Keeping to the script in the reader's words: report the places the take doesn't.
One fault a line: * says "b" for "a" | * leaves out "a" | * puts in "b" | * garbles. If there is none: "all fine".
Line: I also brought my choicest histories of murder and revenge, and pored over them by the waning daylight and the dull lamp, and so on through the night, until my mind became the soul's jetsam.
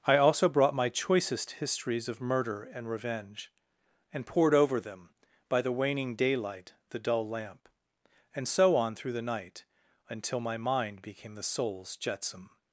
* leaves out "and"